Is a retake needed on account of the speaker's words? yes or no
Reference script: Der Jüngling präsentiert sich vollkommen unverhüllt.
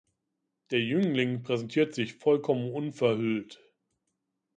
no